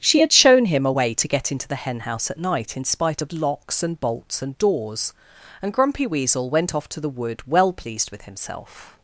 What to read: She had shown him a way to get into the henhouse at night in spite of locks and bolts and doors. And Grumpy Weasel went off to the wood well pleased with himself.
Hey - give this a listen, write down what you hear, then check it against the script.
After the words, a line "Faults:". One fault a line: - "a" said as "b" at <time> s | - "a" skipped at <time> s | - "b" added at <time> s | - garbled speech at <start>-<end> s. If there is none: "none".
She had shown him a way to get into the henhouse at night in spite of locks and bolts and doors. And Grumpy Weasel went off to the wood well pleased with himself.
Faults:
none